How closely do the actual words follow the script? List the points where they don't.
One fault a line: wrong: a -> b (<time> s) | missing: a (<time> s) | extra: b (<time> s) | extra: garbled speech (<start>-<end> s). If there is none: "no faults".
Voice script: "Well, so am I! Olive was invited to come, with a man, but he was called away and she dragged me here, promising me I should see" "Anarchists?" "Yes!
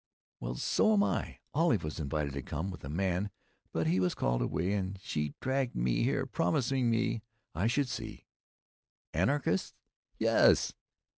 no faults